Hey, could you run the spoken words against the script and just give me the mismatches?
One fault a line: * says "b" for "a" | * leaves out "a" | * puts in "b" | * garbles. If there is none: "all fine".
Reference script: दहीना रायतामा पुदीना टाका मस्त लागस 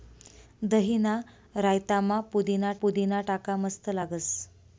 * puts in "पुदीना"